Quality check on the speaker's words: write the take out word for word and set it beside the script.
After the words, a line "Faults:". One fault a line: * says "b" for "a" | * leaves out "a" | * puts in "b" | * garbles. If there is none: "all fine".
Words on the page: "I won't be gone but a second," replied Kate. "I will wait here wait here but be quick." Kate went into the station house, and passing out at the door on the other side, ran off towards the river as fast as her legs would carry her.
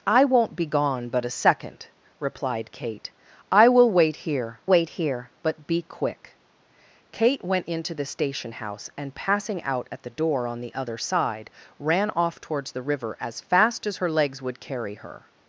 "I won't be gone but a second," replied Kate. "I will wait here wait here but be quick." Kate went into the station house, and passing out at the door on the other side, ran off towards the river as fast as her legs would carry her.
Faults:
all fine